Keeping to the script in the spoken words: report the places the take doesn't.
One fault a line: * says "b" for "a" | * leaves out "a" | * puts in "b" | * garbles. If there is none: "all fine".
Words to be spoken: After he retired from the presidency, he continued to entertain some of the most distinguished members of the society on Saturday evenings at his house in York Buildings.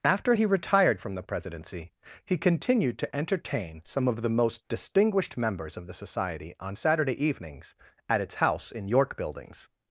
* says "its" for "his"